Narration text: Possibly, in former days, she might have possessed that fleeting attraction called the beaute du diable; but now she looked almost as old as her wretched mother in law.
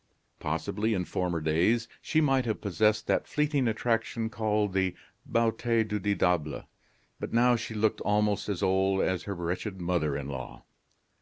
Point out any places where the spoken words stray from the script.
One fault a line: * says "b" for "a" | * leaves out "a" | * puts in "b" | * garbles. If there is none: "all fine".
all fine